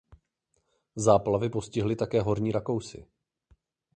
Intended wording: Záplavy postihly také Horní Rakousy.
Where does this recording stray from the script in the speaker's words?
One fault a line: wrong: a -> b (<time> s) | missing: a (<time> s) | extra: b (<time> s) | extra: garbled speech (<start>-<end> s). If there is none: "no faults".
no faults